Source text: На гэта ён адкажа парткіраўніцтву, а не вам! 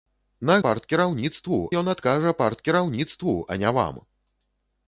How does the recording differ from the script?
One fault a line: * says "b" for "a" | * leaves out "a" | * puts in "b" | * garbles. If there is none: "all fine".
* says "парткіраўніцтву" for "гэта"